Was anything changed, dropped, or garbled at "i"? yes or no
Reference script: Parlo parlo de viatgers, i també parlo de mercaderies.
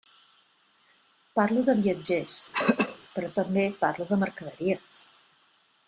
yes